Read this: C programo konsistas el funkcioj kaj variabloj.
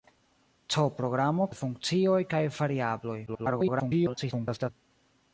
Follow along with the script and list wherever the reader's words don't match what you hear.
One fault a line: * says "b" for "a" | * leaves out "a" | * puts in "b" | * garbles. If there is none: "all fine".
* leaves out "konsistas"
* garbles